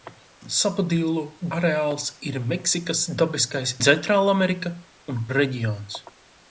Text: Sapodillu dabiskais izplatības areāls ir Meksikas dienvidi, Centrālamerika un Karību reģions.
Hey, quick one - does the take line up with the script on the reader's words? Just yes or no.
no